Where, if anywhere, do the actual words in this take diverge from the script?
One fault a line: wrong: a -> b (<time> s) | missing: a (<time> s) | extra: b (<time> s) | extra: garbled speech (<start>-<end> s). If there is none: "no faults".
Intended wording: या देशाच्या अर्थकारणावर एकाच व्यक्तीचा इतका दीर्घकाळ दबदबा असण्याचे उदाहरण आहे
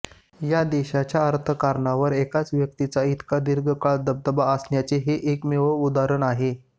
extra: हे एकमेव (5.0 s)